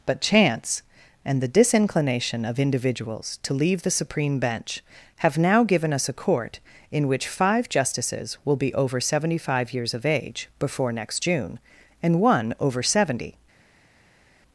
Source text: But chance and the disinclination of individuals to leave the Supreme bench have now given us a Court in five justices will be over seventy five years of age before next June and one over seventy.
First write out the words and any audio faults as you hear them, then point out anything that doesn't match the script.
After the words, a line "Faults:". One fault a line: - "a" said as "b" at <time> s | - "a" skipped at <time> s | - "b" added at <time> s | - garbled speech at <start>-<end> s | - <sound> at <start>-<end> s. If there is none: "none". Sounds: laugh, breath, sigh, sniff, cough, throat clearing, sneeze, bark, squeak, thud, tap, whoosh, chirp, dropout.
But chance and the disinclination of individuals to leave the Supreme bench have now given us a Court in which five justices will be over seventy five years of age before next June and one over seventy.
Faults:
- "which" added at 7.1 s